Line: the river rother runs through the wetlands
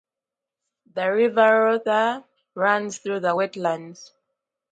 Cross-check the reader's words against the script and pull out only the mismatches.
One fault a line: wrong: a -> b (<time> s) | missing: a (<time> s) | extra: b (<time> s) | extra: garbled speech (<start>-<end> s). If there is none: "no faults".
no faults